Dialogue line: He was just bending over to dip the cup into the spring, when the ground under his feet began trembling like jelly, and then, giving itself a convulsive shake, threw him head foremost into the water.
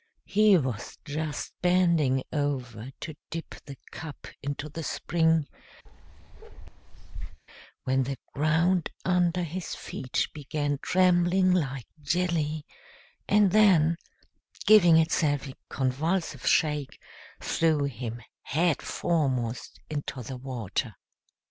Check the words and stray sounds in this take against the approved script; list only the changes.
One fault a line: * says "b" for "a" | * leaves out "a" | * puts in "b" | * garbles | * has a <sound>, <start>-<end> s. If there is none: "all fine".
* has a bark, 5.9-7.4 s